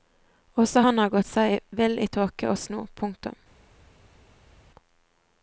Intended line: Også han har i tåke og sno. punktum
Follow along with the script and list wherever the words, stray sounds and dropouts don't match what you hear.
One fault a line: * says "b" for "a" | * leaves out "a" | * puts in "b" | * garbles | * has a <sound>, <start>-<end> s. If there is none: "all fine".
* puts in "gått seg vill"